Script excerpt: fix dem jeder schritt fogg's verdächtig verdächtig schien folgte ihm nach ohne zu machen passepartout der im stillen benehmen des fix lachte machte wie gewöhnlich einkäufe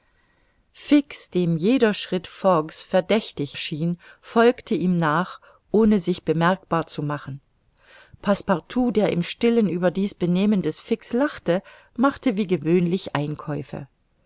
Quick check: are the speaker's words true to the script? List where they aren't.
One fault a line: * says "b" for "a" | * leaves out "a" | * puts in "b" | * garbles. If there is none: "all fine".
* leaves out "verdächtig"
* puts in "sich bemerkbar"
* puts in "über dies"